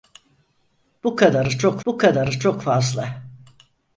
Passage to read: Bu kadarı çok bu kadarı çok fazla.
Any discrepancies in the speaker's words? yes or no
no